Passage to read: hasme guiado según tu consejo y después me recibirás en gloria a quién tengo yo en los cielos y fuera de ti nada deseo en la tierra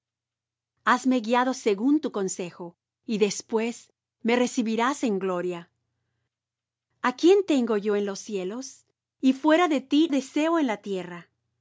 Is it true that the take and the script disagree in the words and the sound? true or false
true